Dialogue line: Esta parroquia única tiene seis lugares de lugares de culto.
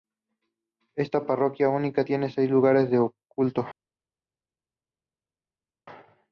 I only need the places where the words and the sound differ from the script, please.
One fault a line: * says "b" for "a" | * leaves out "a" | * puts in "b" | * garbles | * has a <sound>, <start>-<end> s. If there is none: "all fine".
* leaves out "lugares de"